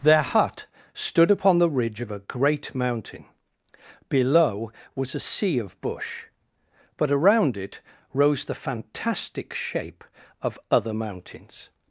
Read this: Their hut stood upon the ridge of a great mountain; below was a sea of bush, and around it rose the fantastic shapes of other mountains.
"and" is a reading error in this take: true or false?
true